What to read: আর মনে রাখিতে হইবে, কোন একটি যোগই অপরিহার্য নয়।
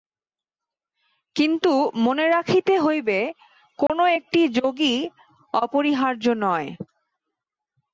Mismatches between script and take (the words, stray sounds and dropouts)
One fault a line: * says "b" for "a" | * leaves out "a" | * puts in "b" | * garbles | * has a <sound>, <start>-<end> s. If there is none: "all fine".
* says "কিন্তু" for "আর"
* has a dropout, 3.9-3.9 s